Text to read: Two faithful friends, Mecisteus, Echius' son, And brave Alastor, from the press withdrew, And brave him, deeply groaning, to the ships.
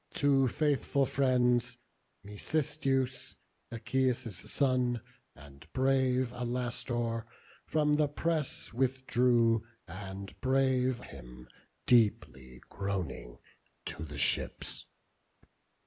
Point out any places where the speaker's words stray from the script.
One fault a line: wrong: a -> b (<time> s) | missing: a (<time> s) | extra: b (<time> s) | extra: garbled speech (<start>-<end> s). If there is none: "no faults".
no faults